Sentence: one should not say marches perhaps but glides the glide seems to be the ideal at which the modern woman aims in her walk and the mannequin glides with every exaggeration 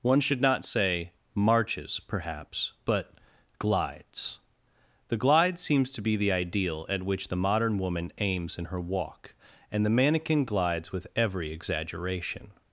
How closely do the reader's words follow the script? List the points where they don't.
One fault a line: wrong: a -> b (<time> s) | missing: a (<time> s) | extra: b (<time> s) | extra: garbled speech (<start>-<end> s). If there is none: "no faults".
no faults